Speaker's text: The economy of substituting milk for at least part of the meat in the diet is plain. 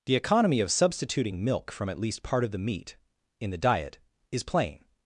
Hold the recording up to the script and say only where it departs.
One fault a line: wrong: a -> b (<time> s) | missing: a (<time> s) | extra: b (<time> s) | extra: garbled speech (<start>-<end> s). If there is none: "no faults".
wrong: for -> from (1.7 s)